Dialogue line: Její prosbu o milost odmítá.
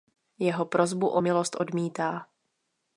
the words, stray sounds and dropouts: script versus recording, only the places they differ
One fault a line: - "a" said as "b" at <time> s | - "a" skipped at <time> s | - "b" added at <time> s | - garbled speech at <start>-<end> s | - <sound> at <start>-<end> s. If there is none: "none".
- "Její" said as "Jeho" at 0.4 s